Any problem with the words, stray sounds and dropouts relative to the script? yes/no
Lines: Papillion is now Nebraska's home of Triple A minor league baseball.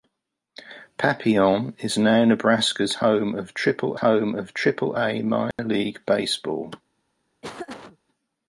yes